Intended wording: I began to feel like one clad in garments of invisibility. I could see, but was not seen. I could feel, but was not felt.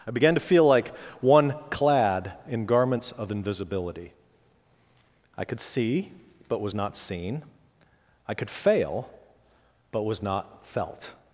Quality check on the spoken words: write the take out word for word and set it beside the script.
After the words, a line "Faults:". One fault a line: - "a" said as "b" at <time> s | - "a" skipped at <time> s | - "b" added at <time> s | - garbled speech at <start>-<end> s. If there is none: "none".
I began to feel like one clad in garments of invisibility. I could see, but was not seen. I could fail, but was not felt.
Faults:
- "feel" said as "fail" at 8.5 s